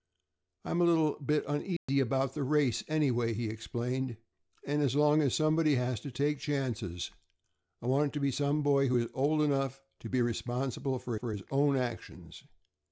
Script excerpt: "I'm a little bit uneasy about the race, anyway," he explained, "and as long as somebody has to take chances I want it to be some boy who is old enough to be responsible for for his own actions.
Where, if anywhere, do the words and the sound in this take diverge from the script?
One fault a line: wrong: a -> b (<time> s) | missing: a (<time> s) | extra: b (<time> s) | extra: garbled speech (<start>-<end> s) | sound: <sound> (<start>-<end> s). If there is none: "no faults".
sound: dropout (1.8-1.9 s)